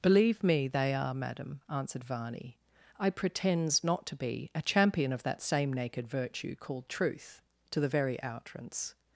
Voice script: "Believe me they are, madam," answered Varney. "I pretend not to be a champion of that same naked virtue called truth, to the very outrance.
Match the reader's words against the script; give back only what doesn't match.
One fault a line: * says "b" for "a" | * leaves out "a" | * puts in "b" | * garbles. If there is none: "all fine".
* says "pretends" for "pretend"